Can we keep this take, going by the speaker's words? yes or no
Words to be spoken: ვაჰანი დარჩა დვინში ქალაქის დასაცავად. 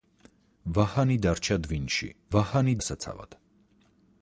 no